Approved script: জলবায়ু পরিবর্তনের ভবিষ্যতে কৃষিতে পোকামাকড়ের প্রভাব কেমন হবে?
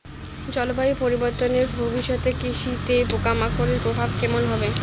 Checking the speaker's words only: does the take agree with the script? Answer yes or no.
yes